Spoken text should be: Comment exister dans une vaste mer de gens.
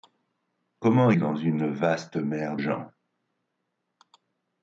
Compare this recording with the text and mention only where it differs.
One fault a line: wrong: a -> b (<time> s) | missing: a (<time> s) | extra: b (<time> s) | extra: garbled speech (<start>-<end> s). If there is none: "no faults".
missing: exister (1.1 s)
missing: de (2.6 s)